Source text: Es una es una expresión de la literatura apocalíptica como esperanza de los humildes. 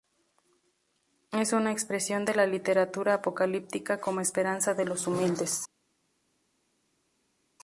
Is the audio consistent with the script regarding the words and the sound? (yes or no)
no